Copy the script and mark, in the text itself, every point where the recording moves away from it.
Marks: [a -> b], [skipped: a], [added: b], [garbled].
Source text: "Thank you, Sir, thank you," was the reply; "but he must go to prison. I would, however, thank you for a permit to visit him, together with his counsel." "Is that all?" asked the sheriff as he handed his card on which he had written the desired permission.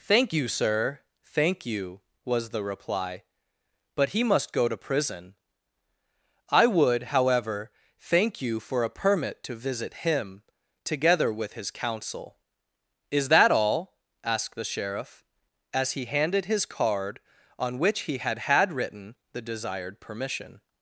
"Thank you, Sir, thank you," was the reply; "but he must go to prison. I would, however, thank you for a permit to visit him, together with his counsel." "Is that all?" asked the sheriff as he handed his card on which he had [added: had] written the desired permission.